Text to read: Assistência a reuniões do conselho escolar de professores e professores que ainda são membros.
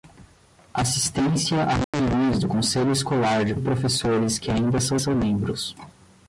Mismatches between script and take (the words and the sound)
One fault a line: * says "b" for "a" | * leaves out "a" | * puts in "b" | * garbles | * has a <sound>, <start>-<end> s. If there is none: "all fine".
* has a dropout, 1.8-1.9 s
* leaves out "professores"
* puts in "são"